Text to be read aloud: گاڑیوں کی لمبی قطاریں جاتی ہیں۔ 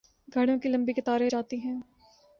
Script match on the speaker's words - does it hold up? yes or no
yes